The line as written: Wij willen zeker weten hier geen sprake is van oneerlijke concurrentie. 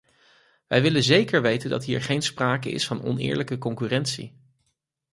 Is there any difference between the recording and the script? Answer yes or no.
yes